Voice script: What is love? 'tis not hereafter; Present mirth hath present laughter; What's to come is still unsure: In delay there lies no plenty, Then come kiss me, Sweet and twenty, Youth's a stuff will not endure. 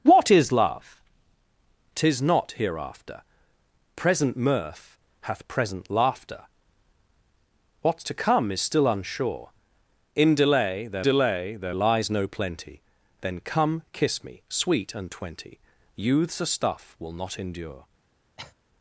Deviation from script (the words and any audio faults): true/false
true